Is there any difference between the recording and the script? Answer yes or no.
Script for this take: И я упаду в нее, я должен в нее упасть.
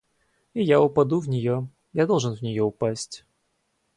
no